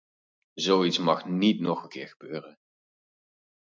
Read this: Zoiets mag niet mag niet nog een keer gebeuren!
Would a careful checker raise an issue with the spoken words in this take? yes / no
yes